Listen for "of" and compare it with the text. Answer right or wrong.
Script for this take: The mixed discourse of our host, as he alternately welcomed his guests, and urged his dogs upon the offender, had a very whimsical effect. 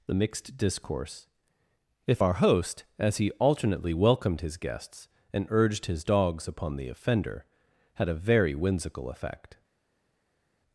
wrong